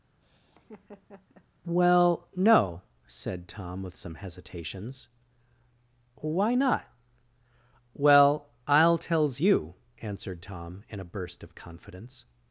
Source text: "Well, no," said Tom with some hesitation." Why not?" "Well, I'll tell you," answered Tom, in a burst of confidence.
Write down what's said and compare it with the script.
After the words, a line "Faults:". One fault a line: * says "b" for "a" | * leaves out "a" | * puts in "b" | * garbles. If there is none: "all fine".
"Well, no," said Tom with some hesitations." Why not?" "Well, I'll tells you," answered Tom, in a burst of confidence.
Faults:
* says "hesitations" for "hesitation"
* says "tells" for "tell"